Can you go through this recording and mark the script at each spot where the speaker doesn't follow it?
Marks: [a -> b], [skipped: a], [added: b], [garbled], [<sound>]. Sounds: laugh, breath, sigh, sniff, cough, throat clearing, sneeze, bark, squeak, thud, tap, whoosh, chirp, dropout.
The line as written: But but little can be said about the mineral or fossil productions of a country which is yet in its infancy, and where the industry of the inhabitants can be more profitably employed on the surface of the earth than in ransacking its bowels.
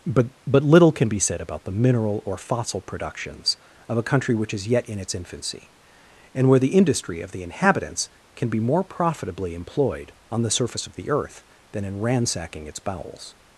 But but little can be said about the mineral or fossil productions of a country which is yet in its infancy, and where the industry of the inhabitants can be more profitably employed on the surface of the earth than in ransacking its bowels.